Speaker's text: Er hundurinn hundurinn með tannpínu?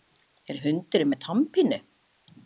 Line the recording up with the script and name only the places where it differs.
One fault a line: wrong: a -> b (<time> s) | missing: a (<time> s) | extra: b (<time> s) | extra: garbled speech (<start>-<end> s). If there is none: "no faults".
missing: hundurinn (1.1 s)